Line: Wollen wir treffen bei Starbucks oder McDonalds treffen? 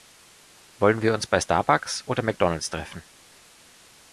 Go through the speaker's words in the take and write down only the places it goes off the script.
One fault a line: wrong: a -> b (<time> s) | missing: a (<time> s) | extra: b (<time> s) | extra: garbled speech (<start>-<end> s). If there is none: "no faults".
wrong: treffen -> uns (1.1 s)